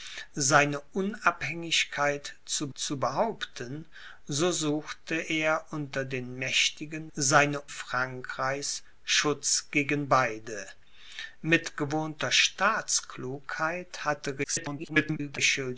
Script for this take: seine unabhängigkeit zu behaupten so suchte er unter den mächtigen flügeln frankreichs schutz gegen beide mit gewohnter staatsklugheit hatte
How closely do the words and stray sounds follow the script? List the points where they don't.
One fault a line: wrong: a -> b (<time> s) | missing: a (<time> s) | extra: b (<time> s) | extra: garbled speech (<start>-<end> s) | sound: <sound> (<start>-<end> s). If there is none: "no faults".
extra: zu (2.7 s)
wrong: flügeln -> seine (7.1 s)
extra: garbled speech (14.4-15.4 s)